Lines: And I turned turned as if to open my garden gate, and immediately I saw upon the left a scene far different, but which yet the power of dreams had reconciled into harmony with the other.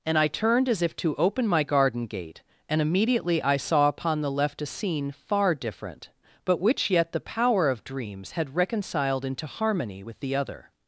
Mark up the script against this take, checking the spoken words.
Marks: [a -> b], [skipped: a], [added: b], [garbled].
And I turned [skipped: turned] as if to open my garden gate, and immediately I saw upon the left a scene far different, but which yet the power of dreams had reconciled into harmony with the other.